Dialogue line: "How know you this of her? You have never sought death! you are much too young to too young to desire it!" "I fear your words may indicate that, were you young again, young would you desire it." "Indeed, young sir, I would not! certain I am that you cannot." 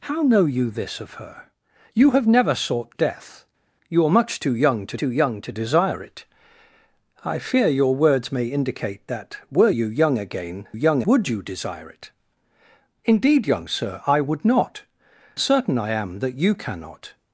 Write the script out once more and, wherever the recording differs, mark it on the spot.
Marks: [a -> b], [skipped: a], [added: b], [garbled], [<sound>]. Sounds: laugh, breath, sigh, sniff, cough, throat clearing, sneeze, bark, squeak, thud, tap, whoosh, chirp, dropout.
"How know you this of her? You have never sought death! you are much too young to too young to desire it!" "I fear your words may indicate that, were you young again, young would you desire it." "Indeed, young sir, I would not! certain I am that you cannot."